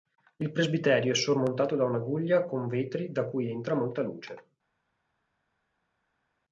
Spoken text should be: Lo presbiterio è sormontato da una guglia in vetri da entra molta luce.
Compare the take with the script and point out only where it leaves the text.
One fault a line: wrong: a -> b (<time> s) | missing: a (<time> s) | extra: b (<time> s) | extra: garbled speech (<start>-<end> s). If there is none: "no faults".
wrong: Lo -> Il (0.4 s)
wrong: in -> con (2.5 s)
extra: cui (3.2 s)